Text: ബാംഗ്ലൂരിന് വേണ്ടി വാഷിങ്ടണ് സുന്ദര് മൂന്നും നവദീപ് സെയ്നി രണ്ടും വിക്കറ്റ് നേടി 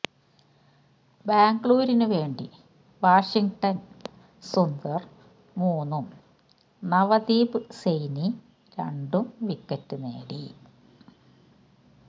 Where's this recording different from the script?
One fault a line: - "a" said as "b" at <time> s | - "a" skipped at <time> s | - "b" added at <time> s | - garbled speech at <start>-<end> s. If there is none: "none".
none